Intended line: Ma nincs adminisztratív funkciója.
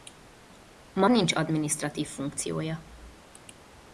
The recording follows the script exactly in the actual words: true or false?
true